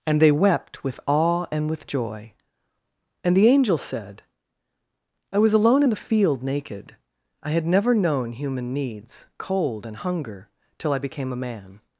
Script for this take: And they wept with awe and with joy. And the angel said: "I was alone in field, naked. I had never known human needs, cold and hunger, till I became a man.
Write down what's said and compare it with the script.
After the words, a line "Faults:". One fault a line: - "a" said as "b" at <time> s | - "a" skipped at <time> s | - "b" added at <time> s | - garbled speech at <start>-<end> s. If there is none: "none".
And they wept with awe and with joy. And the angel said: "I was alone in the field, naked. I had never known human needs, cold and hunger, till I became a man.
Faults:
- "the" added at 5.9 s